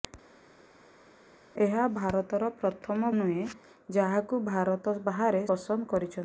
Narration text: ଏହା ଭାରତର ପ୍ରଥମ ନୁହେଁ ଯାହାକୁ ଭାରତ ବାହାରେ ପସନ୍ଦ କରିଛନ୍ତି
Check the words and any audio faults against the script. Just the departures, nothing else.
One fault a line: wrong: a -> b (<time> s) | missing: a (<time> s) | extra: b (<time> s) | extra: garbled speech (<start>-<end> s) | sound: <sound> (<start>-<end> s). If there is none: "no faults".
no faults